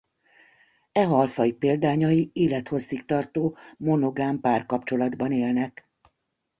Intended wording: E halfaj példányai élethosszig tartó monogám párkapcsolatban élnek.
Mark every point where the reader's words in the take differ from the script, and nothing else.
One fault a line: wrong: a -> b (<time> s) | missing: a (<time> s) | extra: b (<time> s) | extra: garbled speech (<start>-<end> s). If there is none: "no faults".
no faults